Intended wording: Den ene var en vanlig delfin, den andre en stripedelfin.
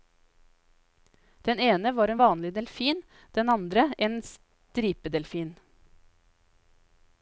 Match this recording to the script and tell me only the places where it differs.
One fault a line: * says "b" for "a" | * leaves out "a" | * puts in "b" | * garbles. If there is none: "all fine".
all fine